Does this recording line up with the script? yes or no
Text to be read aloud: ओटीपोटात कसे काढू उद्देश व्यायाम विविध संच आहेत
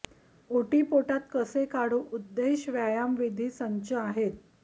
yes